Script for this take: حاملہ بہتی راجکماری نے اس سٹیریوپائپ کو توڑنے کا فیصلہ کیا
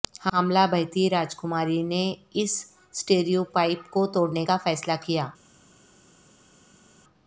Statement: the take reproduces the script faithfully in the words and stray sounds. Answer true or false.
true